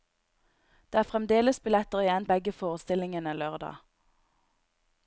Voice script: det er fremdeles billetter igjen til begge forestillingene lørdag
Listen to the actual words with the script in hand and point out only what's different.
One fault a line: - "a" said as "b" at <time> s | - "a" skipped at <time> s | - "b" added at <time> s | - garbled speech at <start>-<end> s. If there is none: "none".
- "til" skipped at 2.2 s